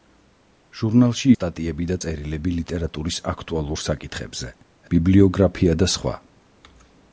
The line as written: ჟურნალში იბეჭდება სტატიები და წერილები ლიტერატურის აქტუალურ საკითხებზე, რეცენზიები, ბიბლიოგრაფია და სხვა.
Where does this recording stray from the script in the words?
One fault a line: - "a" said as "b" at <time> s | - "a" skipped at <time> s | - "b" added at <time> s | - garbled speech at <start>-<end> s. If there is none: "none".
- "იბეჭდება" skipped at 1.3 s
- "რეცენზიები" skipped at 4.5 s